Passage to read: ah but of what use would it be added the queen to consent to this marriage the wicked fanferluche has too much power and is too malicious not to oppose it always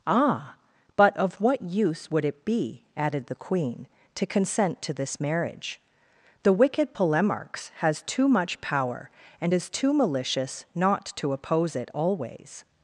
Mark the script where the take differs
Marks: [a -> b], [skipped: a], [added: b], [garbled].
ah but of what use would it be added the queen to consent to this marriage the wicked [fanferluche -> polemarchs] has too much power and is too malicious not to oppose it always